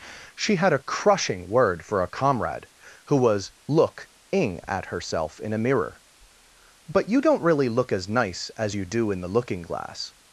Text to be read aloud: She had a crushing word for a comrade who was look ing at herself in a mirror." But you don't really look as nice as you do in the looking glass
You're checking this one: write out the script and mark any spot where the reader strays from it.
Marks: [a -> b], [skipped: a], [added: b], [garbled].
She had a crushing word for a comrade who was look ing at herself in a mirror." But you don't really look as nice as you do in the looking glass